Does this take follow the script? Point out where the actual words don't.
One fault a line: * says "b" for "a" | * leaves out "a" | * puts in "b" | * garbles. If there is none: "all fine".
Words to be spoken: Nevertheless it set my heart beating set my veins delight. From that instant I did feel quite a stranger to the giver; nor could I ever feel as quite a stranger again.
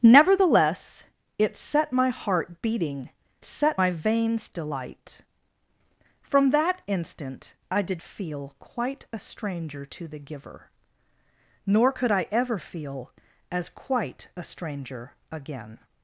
all fine